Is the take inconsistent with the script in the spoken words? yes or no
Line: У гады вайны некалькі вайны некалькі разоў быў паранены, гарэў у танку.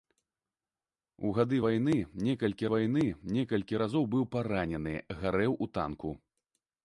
no